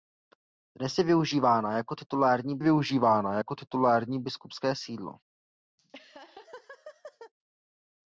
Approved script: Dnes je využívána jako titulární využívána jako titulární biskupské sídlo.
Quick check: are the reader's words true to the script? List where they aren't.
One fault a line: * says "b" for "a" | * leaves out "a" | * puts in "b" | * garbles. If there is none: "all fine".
all fine